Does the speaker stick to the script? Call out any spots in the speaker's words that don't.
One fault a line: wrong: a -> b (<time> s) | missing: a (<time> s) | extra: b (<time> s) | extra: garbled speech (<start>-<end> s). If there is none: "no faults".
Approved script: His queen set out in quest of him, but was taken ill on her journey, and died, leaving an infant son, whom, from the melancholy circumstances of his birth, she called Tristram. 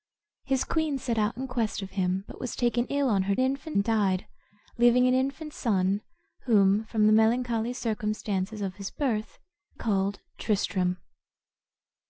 wrong: journey -> infant (3.4 s)
missing: she (9.4 s)